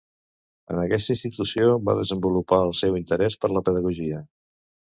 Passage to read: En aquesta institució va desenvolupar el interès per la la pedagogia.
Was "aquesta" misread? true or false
false